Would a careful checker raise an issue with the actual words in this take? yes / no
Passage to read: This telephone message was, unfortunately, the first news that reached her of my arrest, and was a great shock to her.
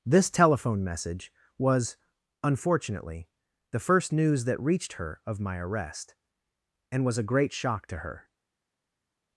no